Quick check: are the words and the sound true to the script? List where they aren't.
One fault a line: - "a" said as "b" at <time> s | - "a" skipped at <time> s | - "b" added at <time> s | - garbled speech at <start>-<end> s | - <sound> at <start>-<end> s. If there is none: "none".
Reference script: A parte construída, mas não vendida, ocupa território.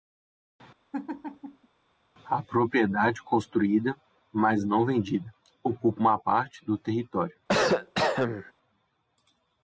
- laugh at 0.9-1.7 s
- "parte" said as "propriedade" at 2.4 s
- "uma parte do" added at 6.0 s
- cough at 7.5-8.5 s